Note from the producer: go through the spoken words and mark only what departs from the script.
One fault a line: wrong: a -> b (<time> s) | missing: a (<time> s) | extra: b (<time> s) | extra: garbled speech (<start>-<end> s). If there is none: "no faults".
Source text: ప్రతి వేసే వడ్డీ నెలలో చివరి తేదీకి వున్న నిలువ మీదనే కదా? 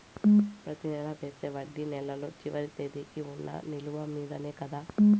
extra: నెల (0.9 s)